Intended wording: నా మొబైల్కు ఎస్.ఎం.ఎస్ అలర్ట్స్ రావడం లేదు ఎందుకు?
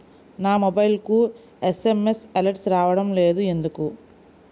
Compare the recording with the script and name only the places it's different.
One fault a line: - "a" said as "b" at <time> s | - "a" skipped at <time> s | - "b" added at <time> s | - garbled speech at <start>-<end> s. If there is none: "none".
none